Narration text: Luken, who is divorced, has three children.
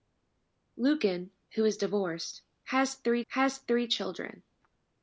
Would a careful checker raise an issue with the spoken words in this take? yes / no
yes